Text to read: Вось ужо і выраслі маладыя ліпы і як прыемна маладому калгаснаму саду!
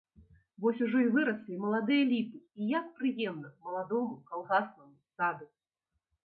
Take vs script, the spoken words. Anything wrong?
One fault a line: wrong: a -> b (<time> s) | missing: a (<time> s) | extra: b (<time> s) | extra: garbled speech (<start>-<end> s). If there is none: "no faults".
no faults